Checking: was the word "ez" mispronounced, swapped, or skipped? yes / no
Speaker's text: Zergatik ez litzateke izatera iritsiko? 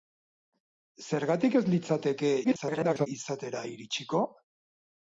no